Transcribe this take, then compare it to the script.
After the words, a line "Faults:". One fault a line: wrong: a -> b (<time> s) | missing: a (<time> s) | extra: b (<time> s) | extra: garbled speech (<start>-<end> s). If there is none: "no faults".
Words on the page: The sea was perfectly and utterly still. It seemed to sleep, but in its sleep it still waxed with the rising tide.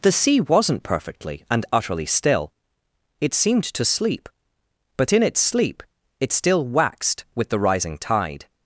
The sea wasn't perfectly and utterly still. It seemed to sleep, but in its sleep it still waxed with the rising tide.
Faults:
wrong: was -> wasn't (0.4 s)